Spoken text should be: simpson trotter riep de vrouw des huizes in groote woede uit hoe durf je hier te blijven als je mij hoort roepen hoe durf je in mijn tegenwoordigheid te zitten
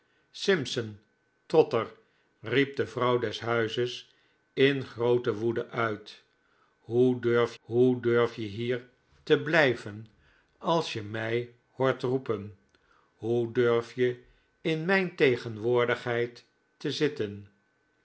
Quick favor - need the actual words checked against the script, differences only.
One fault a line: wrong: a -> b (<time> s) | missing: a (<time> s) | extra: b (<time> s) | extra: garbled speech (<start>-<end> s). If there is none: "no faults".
extra: hoe durf (7.6 s)